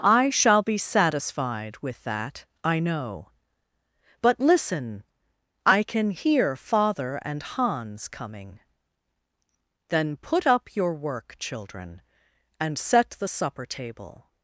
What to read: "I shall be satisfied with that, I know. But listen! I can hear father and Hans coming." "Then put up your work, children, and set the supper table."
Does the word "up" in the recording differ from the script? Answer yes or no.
no